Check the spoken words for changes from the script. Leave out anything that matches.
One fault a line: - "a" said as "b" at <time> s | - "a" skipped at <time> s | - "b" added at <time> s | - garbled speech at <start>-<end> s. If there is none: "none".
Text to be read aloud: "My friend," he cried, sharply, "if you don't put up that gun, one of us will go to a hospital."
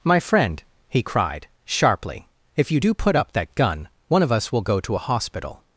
- "don't" said as "do" at 2.8 s